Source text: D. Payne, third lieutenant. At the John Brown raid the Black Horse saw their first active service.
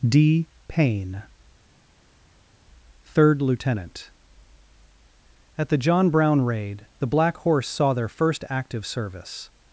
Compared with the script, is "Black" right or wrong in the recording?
right